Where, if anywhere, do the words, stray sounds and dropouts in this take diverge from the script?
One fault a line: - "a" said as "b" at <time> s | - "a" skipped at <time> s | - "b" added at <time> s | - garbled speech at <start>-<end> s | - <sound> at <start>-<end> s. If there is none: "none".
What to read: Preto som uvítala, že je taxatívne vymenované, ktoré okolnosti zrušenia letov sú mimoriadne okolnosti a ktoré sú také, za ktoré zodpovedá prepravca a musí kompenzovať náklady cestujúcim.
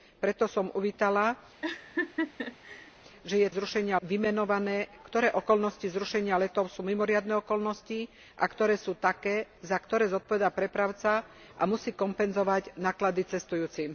- laugh at 1.6-2.9 s
- "taxatívne" said as "zrušenia" at 3.5 s